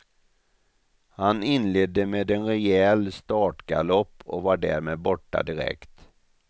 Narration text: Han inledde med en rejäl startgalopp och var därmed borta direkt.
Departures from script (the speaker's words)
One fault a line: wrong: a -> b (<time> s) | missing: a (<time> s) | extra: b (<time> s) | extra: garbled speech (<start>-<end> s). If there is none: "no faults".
no faults